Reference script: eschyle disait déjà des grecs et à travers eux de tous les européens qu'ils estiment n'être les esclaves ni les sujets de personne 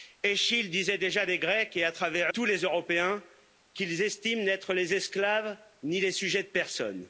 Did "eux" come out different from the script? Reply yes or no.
yes